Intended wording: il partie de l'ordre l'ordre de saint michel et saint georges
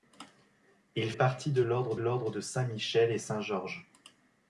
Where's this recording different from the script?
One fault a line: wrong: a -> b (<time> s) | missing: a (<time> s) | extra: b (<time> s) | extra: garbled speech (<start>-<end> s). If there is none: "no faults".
no faults